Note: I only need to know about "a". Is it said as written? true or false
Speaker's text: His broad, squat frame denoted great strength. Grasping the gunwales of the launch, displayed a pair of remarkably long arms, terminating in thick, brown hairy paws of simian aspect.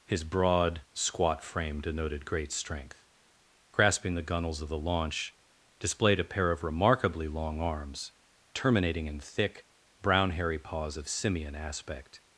true